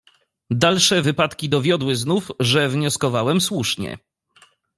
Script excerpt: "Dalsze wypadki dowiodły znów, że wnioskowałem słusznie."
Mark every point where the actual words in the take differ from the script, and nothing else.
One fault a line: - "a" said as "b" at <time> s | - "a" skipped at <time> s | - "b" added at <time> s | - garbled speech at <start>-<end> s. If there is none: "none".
none